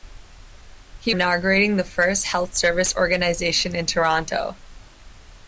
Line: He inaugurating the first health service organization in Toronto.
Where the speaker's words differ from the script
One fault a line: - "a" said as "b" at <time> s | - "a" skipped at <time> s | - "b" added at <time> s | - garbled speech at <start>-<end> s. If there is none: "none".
none